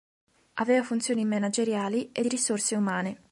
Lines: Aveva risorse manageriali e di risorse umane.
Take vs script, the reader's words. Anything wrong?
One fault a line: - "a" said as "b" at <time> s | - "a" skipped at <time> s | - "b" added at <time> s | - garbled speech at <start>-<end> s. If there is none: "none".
- "risorse" said as "funzioni" at 0.8 s